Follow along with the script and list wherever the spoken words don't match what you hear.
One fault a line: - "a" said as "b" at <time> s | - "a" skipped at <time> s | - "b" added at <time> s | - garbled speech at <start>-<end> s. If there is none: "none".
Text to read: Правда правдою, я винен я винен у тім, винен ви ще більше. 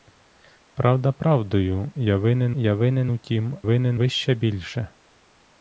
none